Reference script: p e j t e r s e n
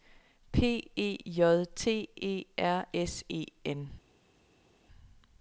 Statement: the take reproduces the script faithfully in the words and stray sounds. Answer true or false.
true